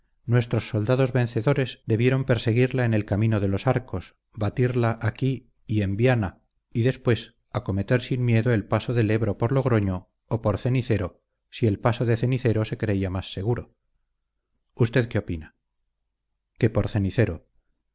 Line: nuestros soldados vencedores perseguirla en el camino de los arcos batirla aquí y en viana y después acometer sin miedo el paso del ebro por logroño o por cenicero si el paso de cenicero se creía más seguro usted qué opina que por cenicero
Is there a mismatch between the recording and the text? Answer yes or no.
yes